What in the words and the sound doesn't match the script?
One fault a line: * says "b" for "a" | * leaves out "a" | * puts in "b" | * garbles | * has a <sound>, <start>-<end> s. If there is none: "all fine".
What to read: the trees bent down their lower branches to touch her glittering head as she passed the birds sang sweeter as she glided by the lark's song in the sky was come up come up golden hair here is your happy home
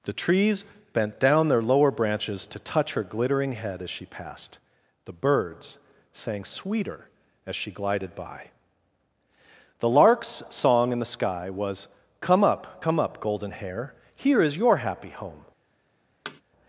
* has a thud, 16.2-16.4 s